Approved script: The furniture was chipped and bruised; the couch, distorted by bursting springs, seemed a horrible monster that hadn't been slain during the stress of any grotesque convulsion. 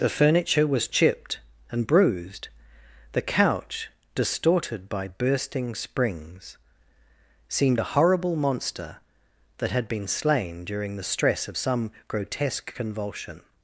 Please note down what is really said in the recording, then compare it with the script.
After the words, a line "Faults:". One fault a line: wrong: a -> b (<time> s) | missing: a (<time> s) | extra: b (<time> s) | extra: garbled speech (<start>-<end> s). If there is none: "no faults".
The furniture was chipped and bruised; the couch, distorted by bursting springs, seemed a horrible monster that had been slain during the stress of some grotesque convulsion.
Faults:
wrong: hadn't -> had (9.7 s)
wrong: any -> some (11.5 s)